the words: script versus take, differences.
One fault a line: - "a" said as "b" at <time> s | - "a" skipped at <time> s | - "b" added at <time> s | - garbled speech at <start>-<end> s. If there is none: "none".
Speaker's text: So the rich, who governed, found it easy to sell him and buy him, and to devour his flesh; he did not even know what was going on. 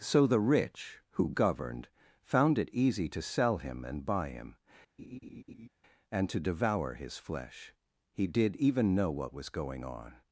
- "not" skipped at 8.6 s